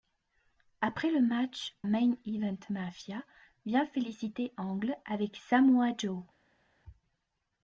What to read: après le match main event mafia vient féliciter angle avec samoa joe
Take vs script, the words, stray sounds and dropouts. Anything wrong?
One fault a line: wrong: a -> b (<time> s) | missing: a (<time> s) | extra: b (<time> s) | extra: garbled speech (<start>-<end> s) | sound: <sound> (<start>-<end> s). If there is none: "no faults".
no faults